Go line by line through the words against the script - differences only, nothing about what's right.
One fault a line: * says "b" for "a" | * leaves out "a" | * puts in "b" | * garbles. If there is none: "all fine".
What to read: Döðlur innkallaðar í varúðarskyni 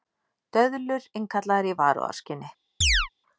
all fine